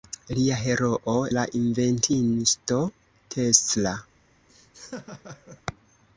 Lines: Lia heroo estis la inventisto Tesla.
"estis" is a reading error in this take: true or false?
true